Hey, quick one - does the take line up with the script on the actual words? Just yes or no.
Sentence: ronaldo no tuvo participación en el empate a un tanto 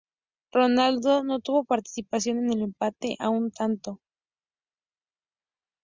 yes